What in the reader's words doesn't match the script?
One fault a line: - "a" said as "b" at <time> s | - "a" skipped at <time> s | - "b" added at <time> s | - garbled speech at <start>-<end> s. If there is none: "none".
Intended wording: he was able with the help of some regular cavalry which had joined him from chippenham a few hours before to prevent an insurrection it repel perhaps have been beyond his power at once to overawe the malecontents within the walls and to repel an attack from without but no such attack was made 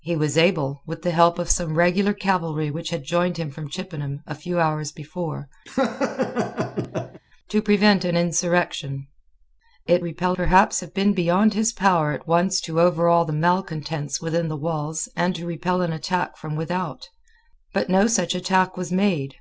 none